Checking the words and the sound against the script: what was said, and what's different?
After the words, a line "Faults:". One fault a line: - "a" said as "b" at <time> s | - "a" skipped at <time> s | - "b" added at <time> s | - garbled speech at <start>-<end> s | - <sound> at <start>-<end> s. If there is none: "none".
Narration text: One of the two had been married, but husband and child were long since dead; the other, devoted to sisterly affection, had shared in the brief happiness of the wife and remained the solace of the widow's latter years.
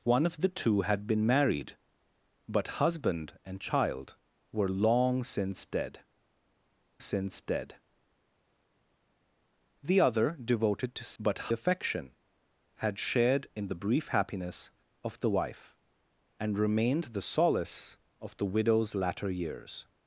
One of the two had been married, but husband and child were long since dead since dead; the other, devoted to but affection, had shared in the brief happiness of the wife and remained the solace of the widow's latter years.
Faults:
- "since dead" added at 7.0 s
- "sisterly" said as "but" at 11.2 s